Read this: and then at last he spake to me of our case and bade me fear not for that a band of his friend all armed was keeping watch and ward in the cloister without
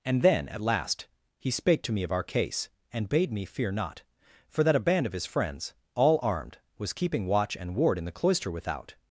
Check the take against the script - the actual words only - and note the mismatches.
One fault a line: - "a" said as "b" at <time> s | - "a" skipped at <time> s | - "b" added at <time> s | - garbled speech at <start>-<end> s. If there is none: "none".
- "friend" said as "friends" at 5.2 s